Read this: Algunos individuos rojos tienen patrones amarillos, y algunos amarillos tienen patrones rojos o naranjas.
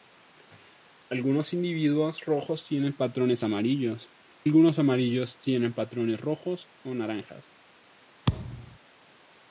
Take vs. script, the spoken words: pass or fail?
fail